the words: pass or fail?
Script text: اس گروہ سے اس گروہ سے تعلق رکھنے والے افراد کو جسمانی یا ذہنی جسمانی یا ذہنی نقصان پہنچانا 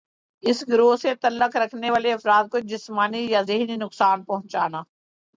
fail